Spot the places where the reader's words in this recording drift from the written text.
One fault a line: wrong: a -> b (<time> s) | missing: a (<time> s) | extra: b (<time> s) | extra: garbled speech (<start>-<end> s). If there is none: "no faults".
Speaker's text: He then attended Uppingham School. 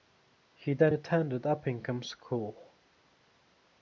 no faults